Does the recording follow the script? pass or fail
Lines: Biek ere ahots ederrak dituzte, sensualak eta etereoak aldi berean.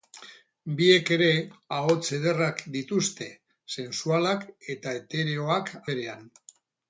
fail